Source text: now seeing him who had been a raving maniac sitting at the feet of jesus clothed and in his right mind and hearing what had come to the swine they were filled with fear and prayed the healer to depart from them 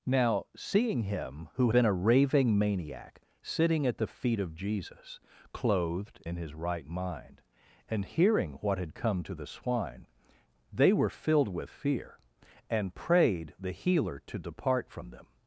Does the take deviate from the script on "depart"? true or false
false